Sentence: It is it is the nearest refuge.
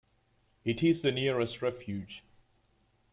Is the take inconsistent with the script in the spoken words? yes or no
yes